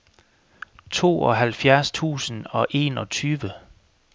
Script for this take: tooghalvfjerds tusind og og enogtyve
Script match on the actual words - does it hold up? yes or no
no